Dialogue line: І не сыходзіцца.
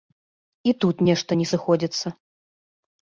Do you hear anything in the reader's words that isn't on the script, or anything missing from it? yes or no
yes